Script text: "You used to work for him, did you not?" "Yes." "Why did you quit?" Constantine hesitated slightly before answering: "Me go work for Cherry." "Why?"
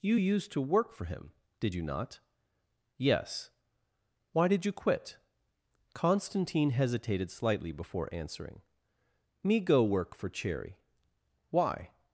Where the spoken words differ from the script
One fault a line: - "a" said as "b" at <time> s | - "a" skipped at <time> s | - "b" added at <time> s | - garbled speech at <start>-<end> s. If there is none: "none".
none